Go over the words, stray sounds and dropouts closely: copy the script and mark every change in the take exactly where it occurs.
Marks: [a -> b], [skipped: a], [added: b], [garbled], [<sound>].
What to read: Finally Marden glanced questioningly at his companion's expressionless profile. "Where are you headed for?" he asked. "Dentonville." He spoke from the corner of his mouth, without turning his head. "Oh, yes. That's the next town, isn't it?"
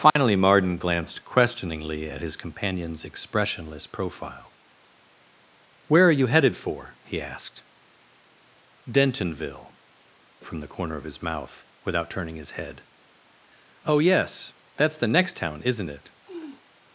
Finally [dropout] Marden glanced questioningly at his companion's expressionless profile. "Where are you headed for?" he asked. "Dentonville." [skipped: He spoke] from the corner of his mouth, without turning his head. "Oh, yes. That's the next town, isn't it?" [sniff]